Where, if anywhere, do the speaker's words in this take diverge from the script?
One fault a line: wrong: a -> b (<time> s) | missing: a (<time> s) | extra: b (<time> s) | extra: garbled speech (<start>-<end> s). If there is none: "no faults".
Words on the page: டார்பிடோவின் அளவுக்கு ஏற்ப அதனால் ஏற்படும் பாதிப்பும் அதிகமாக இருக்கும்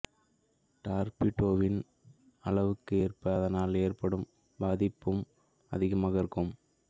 no faults